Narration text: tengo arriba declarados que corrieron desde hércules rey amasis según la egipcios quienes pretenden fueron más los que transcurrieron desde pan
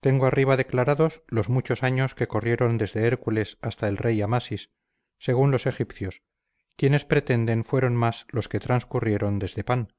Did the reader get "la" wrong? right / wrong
wrong